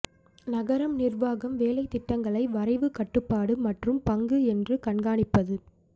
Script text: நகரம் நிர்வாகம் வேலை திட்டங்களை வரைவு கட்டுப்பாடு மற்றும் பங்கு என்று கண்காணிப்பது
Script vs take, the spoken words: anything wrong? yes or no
no